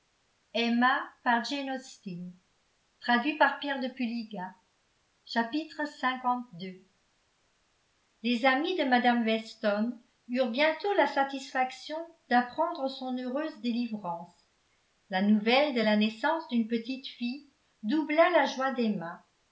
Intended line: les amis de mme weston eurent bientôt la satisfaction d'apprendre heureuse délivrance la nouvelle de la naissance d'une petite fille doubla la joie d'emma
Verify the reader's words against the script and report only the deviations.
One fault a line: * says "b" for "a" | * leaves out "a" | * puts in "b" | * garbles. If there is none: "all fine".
* puts in "son"